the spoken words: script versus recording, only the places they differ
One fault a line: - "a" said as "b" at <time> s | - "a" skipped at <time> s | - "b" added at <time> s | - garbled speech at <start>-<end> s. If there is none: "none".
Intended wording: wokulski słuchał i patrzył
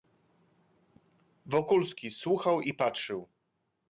none